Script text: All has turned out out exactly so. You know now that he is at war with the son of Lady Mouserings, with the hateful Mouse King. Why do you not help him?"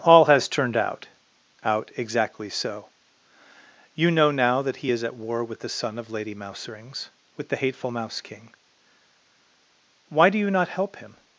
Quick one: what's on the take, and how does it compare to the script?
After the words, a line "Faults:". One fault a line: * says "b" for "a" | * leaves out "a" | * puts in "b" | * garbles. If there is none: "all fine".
All has turned out out exactly so. You know now that he is at war with the son of Lady Mouserings, with the hateful Mouse King. Why do you not help him?"
Faults:
all fine